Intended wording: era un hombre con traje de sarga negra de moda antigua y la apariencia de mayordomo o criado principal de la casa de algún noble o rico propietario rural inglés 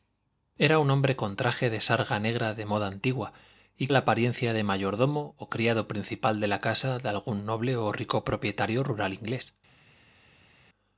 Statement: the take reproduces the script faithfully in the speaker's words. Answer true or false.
true